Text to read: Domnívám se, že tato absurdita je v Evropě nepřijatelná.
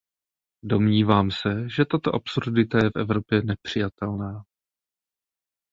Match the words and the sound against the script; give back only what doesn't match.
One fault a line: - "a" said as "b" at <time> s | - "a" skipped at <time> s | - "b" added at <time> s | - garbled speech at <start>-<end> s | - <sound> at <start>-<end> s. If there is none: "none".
none